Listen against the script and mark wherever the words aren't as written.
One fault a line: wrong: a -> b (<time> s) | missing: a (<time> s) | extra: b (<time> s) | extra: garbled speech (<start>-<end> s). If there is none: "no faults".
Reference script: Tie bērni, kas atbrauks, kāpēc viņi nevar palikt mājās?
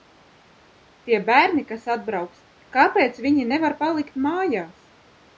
no faults